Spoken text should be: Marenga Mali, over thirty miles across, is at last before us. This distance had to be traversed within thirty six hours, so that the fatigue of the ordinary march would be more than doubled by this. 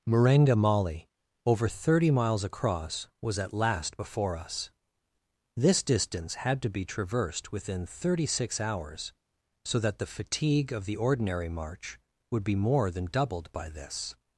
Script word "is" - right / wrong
wrong